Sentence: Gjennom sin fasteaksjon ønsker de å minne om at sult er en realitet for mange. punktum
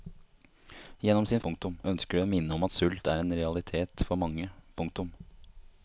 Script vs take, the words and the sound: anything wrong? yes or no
yes